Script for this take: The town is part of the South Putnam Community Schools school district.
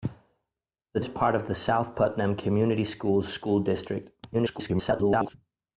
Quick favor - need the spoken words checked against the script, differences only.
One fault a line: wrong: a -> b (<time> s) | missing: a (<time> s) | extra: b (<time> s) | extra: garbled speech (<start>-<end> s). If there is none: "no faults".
missing: town (1.0 s)
extra: garbled speech (4.3-5.3 s)